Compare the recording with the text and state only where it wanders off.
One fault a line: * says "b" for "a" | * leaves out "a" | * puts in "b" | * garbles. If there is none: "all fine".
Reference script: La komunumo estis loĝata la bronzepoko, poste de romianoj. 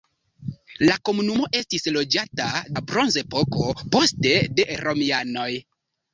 all fine